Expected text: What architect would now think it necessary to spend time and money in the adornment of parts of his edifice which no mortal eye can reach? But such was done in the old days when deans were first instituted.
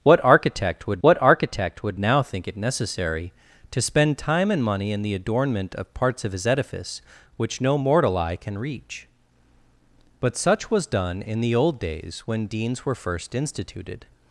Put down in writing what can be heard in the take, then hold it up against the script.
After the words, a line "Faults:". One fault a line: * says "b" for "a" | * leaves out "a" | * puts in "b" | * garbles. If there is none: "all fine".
What architect would what architect would now think it necessary to spend time and money in the adornment of parts of his edifice which no mortal eye can reach? But such was done in the old days when deans were first instituted.
Faults:
* puts in "what architect would"